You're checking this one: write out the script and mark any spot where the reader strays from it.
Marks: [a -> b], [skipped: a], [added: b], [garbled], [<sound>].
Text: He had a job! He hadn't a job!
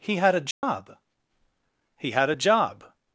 He had a job! [dropout] He [hadn't -> had] a job!